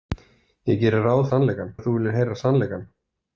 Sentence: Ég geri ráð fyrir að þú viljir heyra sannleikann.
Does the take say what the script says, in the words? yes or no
no